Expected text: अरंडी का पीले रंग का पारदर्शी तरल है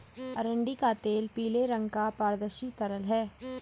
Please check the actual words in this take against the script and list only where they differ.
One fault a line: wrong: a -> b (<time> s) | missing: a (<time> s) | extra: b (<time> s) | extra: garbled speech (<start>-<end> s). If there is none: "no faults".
extra: तेल (1.0 s)